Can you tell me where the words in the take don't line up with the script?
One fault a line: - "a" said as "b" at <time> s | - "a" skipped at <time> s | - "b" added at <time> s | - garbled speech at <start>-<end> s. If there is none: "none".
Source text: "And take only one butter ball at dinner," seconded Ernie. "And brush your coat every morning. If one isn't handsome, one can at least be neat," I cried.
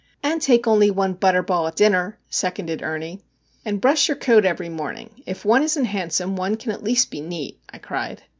none